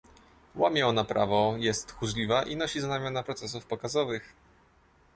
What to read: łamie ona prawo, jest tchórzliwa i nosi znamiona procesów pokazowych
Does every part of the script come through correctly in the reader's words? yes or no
yes